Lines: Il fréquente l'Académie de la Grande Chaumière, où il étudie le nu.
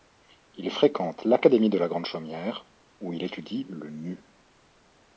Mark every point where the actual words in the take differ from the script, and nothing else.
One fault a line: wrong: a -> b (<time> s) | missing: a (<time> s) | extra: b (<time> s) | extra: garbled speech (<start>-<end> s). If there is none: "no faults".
no faults